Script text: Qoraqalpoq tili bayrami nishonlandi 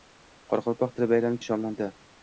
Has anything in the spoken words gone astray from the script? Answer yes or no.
no